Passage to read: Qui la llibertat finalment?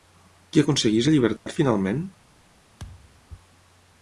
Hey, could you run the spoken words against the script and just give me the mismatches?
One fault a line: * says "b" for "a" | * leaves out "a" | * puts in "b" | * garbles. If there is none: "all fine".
* puts in "aconsegueix"